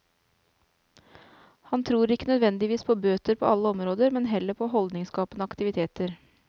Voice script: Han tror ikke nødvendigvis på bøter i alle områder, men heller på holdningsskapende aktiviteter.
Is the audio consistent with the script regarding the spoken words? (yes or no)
no